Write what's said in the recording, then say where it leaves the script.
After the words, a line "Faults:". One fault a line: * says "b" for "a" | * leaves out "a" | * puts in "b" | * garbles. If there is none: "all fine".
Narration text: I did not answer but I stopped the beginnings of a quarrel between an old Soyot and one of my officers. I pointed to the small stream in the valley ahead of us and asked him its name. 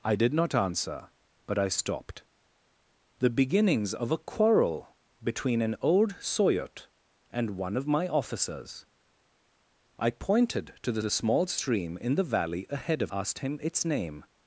I did not answer but I stopped the beginnings of a quarrel between an old Soyot and one of my officers. I pointed to the the small stream in the valley ahead of asked him its name.
Faults:
* puts in "the"
* leaves out "us and"